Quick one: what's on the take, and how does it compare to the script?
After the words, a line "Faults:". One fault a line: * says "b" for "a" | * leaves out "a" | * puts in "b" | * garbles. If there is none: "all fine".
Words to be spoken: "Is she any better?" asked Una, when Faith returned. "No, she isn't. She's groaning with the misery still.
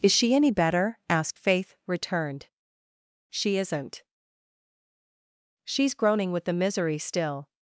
"Is she any better?" asked Faith returned. "She isn't. She's groaning with the misery still.
Faults:
* leaves out "Una when"
* leaves out "No"